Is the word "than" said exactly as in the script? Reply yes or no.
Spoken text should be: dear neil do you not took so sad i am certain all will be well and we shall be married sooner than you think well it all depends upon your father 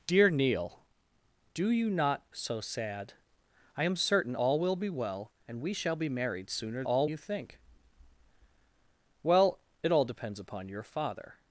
no